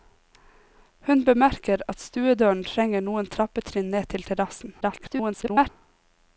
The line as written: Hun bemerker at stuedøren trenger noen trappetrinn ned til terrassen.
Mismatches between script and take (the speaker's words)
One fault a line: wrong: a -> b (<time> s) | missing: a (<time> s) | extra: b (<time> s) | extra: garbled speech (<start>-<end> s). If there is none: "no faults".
extra: garbled speech (4.8-5.7 s)